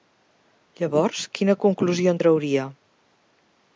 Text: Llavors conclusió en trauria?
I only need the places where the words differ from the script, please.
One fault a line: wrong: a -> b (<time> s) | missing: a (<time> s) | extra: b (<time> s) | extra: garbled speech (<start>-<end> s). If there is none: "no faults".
extra: quina (1.4 s)